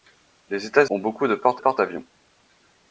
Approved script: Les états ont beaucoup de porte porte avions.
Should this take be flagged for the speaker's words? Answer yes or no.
no